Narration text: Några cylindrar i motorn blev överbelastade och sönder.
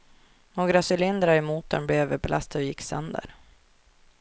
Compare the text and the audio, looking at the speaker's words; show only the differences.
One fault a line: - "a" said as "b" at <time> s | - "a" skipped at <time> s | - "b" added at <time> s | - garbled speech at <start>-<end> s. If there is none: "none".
- "gick" added at 2.7 s